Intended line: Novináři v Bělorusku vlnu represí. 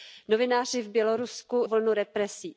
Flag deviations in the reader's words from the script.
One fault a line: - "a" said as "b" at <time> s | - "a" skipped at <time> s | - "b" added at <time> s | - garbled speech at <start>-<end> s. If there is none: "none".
none